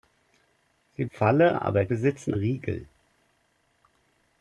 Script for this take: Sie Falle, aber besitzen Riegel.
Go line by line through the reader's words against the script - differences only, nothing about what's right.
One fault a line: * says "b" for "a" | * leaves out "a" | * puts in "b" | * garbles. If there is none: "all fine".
all fine